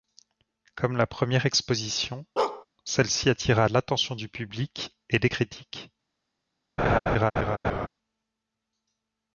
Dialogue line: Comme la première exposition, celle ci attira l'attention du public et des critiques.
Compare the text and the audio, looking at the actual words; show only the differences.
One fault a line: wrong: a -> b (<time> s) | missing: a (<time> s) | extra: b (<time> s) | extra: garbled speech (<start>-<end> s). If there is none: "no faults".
no faults